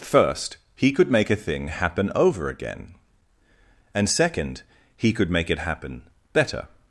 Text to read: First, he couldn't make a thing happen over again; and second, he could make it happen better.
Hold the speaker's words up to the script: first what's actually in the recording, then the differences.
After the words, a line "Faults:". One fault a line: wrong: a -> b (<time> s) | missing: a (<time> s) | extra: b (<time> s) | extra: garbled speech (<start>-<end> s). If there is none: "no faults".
First, he could make a thing happen over again; and second, he could make it happen better.
Faults:
wrong: couldn't -> could (0.9 s)